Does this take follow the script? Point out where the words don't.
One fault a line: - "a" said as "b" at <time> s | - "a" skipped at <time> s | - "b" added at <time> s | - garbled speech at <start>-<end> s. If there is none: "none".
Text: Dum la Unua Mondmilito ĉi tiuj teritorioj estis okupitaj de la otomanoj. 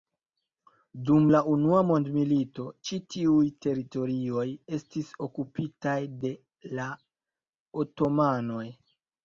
none